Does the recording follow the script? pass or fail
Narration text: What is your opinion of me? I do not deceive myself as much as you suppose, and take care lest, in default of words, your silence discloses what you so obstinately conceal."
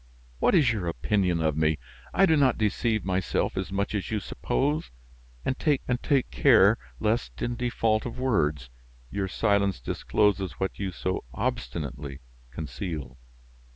fail